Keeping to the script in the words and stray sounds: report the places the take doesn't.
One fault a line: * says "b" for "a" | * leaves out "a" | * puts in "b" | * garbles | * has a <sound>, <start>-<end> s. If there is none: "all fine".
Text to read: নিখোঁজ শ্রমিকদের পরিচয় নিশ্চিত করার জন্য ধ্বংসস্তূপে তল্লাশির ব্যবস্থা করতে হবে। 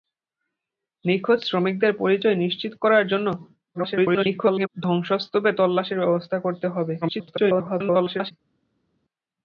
* garbles
* garbles